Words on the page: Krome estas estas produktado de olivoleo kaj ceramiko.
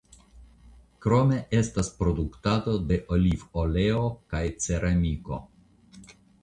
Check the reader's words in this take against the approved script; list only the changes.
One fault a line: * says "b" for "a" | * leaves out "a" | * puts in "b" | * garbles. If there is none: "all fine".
* leaves out "estas"